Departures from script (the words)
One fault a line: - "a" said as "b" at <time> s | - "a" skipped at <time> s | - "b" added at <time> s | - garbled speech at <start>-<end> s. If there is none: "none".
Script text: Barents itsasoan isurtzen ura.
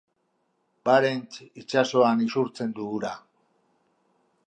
- "du" added at 2.8 s